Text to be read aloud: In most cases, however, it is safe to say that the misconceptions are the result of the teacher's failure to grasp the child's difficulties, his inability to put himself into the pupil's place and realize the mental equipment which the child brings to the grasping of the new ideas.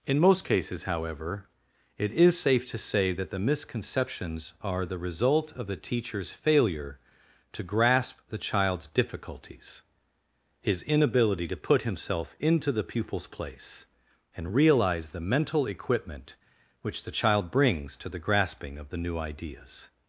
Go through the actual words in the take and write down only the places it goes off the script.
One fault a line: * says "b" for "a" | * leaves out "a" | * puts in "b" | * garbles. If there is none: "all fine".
all fine